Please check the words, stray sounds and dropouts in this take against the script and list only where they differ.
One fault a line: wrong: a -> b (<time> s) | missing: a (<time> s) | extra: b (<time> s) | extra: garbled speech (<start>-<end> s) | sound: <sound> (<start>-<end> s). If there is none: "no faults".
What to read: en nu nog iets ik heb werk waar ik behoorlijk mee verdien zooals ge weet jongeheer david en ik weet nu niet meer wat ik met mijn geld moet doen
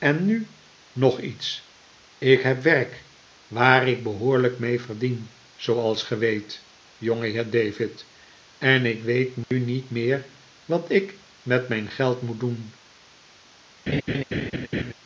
sound: dropout (9.4-9.5 s)
sound: laugh (13.9-14.9 s)